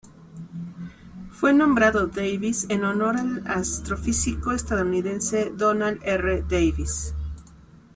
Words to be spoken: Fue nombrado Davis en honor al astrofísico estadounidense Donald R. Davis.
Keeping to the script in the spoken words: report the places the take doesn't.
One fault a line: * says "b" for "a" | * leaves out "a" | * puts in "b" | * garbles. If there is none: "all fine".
all fine